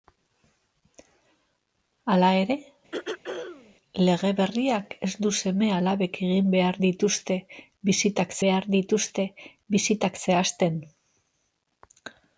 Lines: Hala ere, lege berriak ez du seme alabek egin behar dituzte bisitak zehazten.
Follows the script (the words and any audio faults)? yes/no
no